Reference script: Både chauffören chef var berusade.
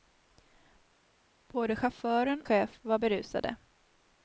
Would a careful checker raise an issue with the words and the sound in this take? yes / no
no